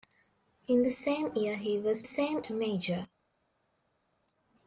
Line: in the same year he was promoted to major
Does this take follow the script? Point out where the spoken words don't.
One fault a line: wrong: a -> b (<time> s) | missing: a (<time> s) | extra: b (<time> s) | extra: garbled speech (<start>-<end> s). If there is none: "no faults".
wrong: promoted -> same (2.0 s)